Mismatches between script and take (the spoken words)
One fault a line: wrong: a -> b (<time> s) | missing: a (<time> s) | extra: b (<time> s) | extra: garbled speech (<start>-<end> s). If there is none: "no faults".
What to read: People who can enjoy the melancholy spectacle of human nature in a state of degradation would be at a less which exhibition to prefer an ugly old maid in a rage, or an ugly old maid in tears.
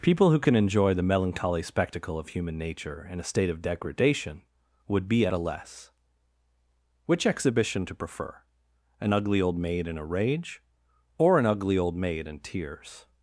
no faults